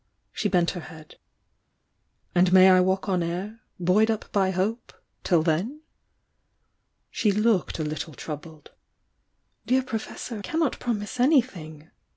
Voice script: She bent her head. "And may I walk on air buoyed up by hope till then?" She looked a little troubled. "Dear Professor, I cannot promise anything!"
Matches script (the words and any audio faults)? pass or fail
fail